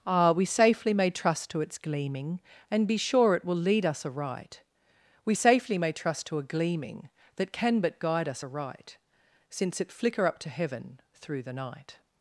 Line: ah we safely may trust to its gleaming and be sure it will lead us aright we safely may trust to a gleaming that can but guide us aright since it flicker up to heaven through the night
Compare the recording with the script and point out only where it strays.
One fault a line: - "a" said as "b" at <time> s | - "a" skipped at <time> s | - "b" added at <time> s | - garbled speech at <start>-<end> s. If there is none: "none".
none